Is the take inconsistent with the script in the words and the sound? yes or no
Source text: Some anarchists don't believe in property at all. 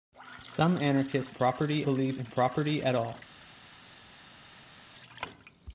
yes